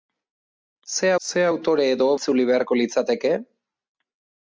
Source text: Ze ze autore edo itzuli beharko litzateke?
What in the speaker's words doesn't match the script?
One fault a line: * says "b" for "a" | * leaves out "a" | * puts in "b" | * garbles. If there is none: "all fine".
all fine